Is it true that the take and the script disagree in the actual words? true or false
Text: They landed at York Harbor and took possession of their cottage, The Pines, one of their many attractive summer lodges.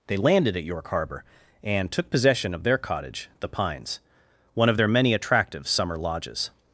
false